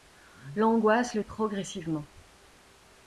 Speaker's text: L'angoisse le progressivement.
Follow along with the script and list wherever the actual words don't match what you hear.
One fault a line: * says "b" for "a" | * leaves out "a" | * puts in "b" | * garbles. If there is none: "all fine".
all fine